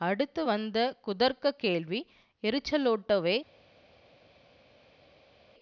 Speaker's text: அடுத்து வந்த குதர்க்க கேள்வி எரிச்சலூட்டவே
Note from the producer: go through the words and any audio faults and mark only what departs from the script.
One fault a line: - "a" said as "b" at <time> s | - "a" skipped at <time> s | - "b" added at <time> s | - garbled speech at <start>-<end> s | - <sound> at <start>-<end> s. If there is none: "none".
none